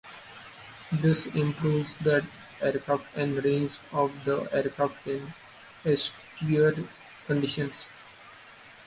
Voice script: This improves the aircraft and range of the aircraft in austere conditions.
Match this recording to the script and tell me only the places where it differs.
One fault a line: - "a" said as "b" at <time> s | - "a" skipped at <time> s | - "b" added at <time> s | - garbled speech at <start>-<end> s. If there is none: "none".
none